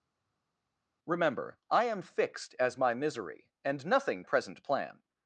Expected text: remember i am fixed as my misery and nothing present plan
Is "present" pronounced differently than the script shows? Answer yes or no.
no